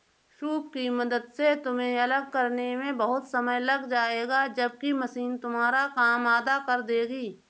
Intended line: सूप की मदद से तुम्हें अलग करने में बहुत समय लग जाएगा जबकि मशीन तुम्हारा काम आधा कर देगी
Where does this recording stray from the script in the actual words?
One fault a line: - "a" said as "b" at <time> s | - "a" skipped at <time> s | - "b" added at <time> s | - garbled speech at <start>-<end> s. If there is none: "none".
none